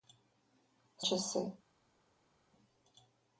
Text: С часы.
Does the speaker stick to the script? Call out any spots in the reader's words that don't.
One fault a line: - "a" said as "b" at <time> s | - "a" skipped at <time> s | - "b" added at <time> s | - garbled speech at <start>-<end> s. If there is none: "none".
none